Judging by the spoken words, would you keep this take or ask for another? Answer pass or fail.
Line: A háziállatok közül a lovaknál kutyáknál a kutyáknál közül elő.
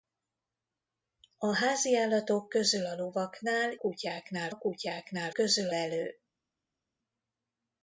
pass